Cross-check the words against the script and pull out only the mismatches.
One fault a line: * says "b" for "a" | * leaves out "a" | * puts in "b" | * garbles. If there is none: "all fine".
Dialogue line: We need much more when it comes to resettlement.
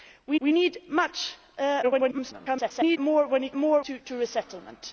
* puts in "we"
* garbles
* says "more" for "comes"